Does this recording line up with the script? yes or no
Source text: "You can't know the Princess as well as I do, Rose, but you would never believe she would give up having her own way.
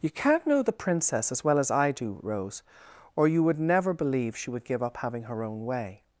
no